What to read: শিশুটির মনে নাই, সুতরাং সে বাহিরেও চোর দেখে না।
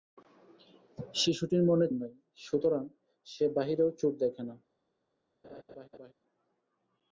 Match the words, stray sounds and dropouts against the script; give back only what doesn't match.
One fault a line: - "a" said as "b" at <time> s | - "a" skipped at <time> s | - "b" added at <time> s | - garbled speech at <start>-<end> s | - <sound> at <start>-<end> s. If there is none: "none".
- laugh at 5.4-6.1 s